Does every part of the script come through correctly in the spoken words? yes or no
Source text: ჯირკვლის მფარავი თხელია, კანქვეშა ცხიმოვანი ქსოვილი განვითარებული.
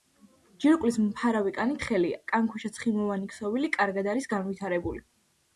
no